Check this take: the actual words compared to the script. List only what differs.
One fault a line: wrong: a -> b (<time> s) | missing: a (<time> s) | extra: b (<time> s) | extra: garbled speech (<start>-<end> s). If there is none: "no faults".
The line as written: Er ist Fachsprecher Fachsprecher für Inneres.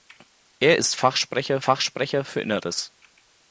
no faults